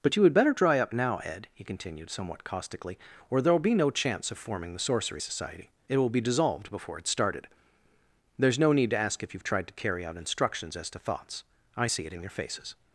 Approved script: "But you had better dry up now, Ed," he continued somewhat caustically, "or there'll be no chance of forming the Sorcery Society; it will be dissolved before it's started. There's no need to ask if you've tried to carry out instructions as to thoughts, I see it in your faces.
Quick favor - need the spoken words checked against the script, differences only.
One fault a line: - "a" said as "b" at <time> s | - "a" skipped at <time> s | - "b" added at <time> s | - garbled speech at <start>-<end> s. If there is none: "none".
none